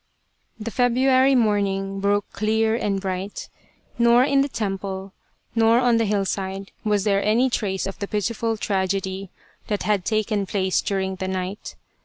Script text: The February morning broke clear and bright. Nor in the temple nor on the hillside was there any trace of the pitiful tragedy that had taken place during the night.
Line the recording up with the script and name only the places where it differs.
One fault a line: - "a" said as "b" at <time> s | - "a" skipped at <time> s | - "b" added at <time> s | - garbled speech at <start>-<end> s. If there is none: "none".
none